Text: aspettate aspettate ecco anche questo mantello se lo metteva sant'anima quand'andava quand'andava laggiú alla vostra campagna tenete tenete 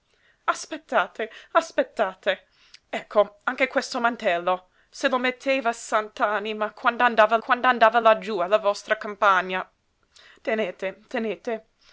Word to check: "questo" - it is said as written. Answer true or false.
true